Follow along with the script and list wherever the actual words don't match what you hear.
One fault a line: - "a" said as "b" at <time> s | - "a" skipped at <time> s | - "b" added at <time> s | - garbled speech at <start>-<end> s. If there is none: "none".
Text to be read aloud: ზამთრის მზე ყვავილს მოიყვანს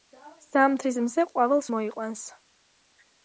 none